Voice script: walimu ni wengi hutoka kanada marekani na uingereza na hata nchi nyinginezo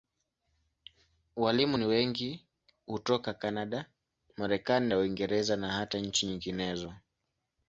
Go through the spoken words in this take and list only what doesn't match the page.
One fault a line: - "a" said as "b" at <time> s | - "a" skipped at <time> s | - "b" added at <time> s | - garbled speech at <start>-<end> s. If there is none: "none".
none